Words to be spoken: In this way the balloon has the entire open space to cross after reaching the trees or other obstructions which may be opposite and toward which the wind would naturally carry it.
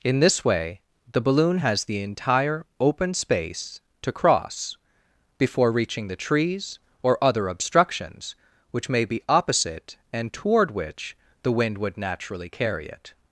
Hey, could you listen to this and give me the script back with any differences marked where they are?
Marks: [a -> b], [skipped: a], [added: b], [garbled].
In this way the balloon has the entire open space to cross [after -> before] reaching the trees or other obstructions which may be opposite and toward which the wind would naturally carry it.